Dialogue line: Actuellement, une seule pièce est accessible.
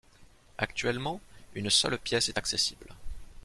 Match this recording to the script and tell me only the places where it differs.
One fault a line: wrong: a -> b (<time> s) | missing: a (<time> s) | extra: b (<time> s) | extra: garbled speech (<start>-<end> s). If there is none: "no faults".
no faults